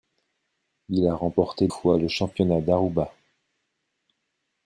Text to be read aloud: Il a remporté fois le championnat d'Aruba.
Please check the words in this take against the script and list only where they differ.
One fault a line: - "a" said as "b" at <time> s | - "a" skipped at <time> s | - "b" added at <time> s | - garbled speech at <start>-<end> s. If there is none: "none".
none